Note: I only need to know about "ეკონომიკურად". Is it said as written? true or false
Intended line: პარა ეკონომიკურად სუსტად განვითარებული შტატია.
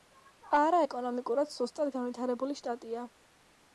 true